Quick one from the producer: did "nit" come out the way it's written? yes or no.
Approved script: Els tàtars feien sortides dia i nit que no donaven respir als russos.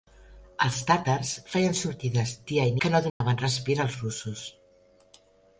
no